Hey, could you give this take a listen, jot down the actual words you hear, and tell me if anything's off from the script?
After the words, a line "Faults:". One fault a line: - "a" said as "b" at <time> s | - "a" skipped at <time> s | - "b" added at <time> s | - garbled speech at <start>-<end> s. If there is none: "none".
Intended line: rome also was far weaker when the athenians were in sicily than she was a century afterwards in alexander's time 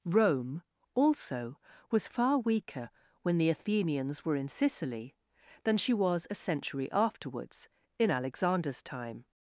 rome also was far weaker when the athenians were in sicily than she was a century afterwards in alexander's time
Faults:
none